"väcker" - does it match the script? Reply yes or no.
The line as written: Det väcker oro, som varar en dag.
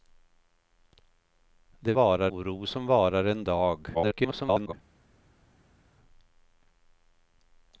no